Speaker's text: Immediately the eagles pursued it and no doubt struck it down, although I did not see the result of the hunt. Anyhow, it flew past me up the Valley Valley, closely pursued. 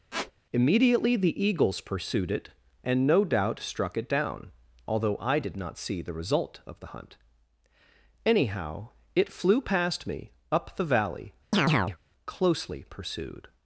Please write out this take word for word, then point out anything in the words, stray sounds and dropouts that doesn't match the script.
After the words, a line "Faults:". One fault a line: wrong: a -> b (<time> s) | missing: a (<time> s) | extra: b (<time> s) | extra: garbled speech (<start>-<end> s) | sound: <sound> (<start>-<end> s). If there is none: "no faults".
Immediately the eagles pursued it and no doubt struck it down, although I did not see the result of the hunt. Anyhow, it flew past me up the Valley, closely pursued.
Faults:
sound: squeak (0.1-0.3 s)
missing: Valley (11.3 s)
sound: chirp (11.5-12.0 s)